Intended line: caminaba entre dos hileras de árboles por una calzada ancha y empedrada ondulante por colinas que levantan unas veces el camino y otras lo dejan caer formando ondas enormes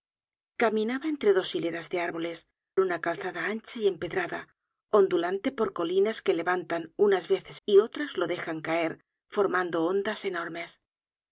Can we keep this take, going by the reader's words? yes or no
no